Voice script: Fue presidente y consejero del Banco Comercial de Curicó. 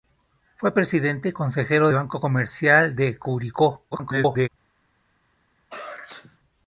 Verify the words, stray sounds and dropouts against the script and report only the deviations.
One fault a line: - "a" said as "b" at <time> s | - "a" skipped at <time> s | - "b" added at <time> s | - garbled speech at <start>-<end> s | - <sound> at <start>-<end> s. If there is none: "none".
- "del" skipped at 1.9 s
- garbled speech at 3.9-4.5 s
- sneeze at 5.7-6.4 s